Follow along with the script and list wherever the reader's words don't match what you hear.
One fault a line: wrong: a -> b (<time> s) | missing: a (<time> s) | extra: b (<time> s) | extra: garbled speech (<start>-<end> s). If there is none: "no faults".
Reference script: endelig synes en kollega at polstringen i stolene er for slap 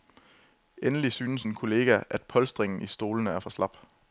no faults